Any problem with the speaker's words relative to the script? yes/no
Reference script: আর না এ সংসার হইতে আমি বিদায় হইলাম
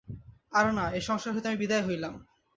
no